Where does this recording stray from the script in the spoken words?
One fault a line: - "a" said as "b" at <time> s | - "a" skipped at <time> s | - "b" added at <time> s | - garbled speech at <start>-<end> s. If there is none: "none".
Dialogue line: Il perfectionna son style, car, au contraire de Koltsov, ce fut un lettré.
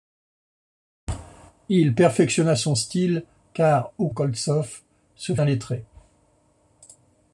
- "contraire de" skipped at 4.1 s
- "fut" skipped at 5.4 s